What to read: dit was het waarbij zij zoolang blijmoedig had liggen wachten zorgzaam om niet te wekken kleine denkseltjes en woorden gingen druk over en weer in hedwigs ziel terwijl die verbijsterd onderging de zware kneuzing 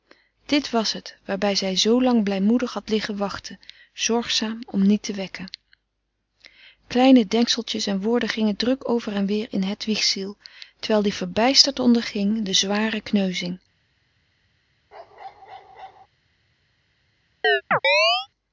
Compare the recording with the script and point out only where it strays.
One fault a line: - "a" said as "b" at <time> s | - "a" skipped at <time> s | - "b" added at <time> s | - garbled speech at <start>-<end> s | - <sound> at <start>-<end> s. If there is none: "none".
- bark at 14.9-16.1 s
- chirp at 17.4-18.3 s